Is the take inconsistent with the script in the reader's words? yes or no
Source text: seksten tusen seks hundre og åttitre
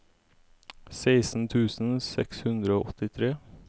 no